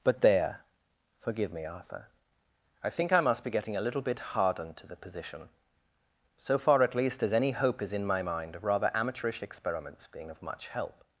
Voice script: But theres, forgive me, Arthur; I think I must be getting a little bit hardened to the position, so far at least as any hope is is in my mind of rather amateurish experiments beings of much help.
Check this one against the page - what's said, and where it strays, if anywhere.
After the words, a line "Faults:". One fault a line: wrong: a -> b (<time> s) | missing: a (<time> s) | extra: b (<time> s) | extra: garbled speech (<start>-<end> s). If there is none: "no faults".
But there, forgive me, Arthur; I think I must be getting a little bit hardened to the position, so far at least as any hope is in my mind of rather amateurish experiments being of much help.
Faults:
wrong: theres -> there (0.2 s)
missing: is (7.9 s)
wrong: beings -> being (10.1 s)